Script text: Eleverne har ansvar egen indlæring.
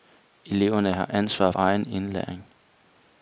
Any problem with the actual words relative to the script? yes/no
no